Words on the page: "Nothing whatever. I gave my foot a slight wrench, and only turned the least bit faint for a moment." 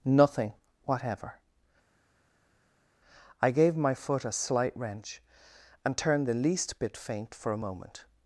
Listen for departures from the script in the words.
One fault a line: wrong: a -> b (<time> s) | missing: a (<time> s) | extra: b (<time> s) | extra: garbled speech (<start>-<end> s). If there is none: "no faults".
missing: only (6.0 s)